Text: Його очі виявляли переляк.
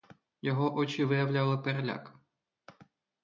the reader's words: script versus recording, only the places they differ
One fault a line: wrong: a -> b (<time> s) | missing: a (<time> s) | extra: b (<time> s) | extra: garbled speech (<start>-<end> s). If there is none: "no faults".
no faults